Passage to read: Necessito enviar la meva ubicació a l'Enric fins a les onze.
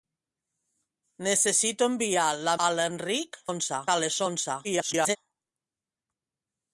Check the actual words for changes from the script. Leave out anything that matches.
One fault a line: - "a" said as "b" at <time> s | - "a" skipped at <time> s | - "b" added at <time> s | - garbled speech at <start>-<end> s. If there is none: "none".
- "meva ubicació" skipped at 2.5 s
- "fins" said as "onze" at 3.5 s
- garbled speech at 4.6-5.2 s